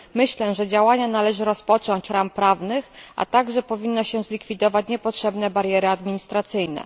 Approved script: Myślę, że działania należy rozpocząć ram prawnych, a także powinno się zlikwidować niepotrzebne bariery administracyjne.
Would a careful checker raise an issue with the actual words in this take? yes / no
no